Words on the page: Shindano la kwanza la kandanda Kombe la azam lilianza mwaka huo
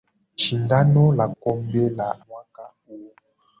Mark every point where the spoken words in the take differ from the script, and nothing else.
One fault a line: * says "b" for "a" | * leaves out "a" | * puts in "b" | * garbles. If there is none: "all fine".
* leaves out "kwanza la kandanda"
* leaves out "azam lilianza"